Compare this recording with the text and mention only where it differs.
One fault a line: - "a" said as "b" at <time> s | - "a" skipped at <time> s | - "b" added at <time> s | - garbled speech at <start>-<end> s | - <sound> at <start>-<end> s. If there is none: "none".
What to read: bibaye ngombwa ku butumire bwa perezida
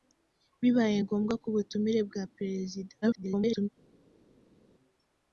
- garbled speech at 3.0-3.7 s